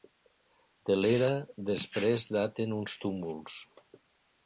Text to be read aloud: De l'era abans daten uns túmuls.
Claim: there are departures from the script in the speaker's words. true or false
true